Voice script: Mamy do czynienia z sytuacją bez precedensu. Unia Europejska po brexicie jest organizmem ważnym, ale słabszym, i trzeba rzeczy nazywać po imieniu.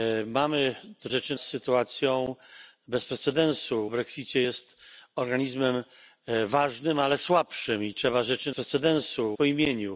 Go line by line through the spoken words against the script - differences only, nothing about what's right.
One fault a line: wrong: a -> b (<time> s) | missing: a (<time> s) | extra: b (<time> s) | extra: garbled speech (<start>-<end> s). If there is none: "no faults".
wrong: czynienia -> rzeczy (1.1 s)
missing: Unia Europejska po (3.9 s)
wrong: nazywać -> precedensu (8.5 s)